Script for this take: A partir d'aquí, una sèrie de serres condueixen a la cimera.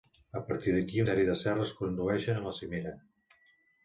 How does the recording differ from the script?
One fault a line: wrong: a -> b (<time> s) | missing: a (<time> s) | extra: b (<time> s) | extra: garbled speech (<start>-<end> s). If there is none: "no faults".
missing: una (1.0 s)